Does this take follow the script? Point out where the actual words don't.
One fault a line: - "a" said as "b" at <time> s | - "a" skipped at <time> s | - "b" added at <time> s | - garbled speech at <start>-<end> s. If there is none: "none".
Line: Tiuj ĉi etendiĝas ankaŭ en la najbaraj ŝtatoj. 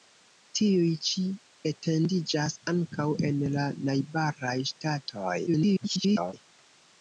- garbled speech at 5.5-6.3 s